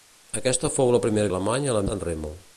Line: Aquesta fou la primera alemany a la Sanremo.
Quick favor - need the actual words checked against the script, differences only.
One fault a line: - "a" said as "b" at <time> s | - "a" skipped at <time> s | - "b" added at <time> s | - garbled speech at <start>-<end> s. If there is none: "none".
none